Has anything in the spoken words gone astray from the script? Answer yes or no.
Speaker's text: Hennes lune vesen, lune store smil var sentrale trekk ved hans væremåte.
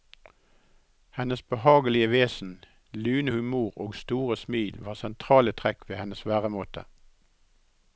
yes